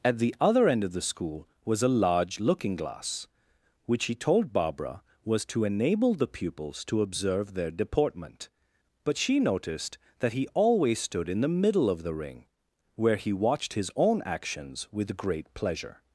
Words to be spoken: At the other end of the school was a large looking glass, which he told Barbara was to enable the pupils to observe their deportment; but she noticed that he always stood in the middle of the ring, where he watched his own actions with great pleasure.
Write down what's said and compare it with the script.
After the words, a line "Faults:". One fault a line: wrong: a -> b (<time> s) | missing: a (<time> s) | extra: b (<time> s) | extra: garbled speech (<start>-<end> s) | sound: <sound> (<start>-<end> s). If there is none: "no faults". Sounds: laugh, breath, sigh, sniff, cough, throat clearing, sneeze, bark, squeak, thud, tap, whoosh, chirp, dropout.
At the other end of the school was a large looking glass, which he told Barbara was to enable the pupils to observe their deportment; but she noticed that he always stood in the middle of the ring, where he watched his own actions with great pleasure.
Faults:
no faults